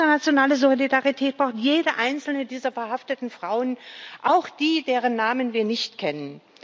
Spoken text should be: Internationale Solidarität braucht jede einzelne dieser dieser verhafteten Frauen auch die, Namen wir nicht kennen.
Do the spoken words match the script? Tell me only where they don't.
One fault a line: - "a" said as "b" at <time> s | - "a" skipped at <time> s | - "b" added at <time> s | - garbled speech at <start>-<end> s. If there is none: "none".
- "dieser" skipped at 2.7 s
- "deren" added at 4.8 s